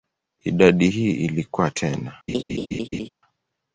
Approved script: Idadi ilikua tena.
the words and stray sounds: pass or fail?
fail